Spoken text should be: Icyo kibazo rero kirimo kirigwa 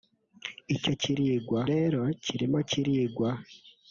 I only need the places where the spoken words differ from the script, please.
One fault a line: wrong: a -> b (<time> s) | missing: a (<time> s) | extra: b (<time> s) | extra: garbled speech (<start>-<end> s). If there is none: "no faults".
wrong: kibazo -> kirigwa (1.0 s)